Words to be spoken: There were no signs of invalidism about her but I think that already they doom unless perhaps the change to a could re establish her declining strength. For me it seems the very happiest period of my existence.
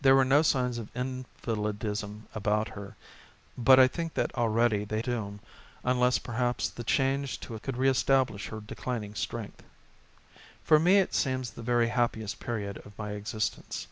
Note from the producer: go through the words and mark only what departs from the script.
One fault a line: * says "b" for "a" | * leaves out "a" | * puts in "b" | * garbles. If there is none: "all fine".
all fine